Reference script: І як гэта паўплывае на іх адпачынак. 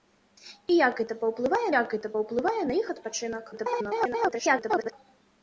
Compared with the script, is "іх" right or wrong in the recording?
right